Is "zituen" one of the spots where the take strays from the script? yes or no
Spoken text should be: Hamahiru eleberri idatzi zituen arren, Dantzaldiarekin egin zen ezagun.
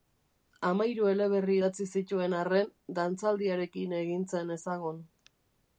no